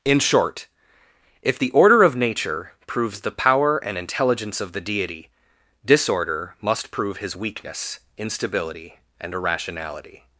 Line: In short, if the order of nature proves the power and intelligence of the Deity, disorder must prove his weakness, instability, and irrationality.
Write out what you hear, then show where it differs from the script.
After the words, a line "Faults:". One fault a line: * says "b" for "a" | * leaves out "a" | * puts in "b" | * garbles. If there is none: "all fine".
In short, if the order of nature proves the power and intelligence of the Deity, disorder must prove his weakness, instability, and irrationality.
Faults:
all fine